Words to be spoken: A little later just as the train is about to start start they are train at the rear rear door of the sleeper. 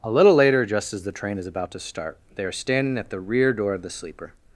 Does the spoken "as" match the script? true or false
true